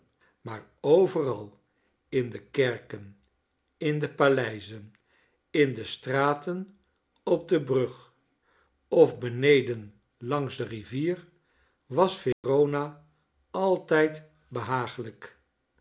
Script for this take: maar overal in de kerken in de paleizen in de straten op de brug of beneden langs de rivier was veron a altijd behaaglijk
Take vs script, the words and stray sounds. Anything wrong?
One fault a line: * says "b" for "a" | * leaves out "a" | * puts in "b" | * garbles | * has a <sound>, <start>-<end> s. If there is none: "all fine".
* has a dropout, 12.3-12.4 s